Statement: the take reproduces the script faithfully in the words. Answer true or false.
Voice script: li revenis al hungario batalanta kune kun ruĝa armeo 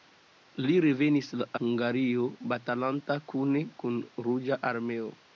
false